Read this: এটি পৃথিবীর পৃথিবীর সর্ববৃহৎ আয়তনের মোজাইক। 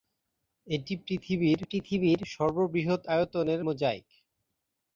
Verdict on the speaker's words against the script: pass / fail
pass